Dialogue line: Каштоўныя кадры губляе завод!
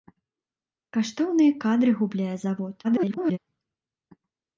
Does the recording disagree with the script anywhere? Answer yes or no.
yes